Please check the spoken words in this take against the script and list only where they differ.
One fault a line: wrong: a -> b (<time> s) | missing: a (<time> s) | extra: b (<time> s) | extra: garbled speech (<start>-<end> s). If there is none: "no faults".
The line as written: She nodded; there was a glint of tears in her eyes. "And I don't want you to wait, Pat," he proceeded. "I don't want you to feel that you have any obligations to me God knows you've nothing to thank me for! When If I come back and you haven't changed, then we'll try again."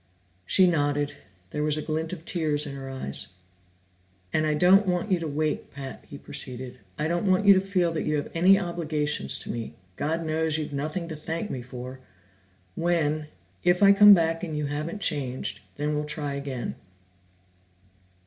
no faults